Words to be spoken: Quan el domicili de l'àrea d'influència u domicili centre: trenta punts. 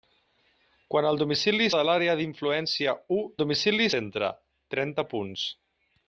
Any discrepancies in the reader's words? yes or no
no